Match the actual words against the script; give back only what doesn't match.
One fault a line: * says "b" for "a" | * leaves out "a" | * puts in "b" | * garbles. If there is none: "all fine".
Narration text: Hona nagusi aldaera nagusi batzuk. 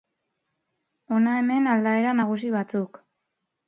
* says "hemen" for "nagusi"